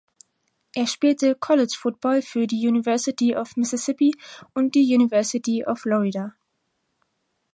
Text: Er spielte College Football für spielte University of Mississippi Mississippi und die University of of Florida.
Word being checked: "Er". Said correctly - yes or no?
yes